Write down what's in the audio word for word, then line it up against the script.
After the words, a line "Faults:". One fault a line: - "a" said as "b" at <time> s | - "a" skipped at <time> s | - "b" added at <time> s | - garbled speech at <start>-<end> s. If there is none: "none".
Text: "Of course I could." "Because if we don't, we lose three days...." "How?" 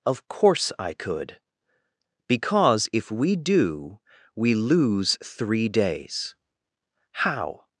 "Of course I could." "Because if we do, we lose three days...." "How?"
Faults:
- "don't" said as "do" at 3.4 s